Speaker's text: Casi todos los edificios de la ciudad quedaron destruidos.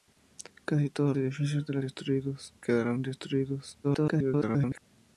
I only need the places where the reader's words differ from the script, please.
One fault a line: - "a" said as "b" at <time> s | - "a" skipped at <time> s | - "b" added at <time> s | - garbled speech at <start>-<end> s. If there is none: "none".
- "los" skipped at 1.1 s
- "ciudad" said as "destruidos" at 1.8 s
- garbled speech at 3.8-4.8 s